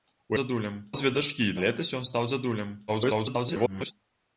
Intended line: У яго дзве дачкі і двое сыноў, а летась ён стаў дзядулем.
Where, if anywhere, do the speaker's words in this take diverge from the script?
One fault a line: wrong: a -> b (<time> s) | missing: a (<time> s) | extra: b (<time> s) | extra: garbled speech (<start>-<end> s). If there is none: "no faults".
wrong: яго -> дзядулем (0.4 s)
missing: двое сыноў (1.5 s)
extra: garbled speech (2.9-3.9 s)